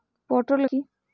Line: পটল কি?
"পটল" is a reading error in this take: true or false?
false